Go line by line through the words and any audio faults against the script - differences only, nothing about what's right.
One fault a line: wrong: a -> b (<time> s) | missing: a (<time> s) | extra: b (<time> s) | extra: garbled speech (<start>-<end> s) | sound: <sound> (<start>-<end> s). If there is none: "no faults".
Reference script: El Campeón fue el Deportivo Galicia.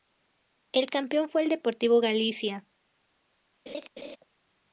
sound: laugh (3.7-4.2 s)